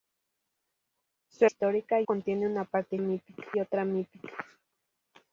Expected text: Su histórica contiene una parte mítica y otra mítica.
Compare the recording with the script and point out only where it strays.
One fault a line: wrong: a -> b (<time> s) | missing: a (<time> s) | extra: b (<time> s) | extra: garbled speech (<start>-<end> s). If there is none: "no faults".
no faults